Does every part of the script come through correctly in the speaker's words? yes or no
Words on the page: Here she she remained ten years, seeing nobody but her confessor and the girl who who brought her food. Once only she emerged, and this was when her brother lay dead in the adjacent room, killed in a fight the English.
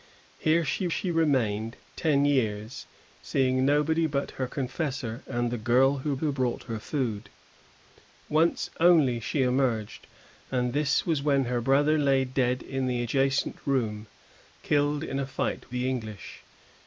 yes